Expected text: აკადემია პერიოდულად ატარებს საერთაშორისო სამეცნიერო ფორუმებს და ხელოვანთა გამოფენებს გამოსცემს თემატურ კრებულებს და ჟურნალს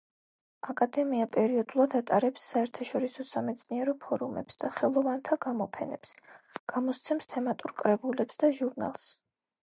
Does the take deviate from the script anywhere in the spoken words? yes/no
no